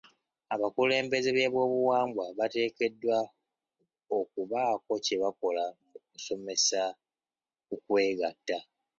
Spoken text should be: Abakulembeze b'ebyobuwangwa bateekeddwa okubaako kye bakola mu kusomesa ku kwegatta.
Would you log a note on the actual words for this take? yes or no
no